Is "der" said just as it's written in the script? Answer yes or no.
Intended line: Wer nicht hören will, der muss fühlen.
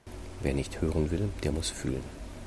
yes